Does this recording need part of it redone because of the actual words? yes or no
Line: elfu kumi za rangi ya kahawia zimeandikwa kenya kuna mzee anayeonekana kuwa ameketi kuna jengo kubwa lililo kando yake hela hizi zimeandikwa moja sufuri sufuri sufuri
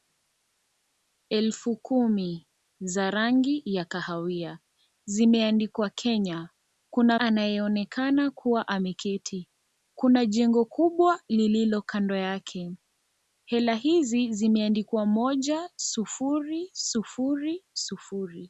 yes